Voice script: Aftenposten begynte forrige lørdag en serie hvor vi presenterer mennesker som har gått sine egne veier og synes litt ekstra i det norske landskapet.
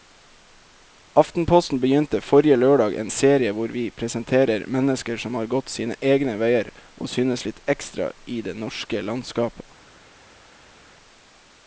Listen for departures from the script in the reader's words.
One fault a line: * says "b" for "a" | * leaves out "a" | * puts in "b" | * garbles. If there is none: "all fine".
all fine